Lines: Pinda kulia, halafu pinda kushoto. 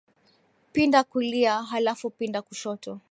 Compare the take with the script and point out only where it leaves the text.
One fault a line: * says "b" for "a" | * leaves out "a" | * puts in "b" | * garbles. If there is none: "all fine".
all fine